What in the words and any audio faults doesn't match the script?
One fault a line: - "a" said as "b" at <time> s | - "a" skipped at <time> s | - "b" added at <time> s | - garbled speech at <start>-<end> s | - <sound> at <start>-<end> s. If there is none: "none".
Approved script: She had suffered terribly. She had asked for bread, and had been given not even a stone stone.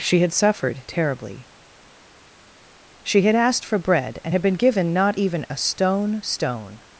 none